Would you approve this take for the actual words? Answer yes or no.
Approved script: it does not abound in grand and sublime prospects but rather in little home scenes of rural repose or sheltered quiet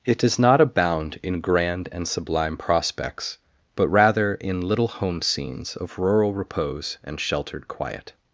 no